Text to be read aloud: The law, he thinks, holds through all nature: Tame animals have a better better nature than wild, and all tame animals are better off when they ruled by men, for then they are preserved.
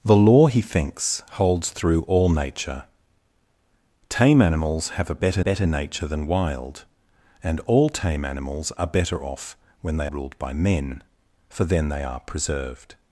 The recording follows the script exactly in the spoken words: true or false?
true